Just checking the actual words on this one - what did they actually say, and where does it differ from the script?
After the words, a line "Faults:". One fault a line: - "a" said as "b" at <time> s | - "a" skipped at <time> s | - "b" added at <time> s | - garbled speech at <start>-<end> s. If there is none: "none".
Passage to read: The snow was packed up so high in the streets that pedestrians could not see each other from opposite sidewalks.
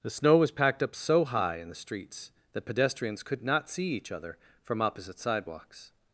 The snow was packed up so high in the streets that pedestrians could not see each other from opposite sidewalks.
Faults:
none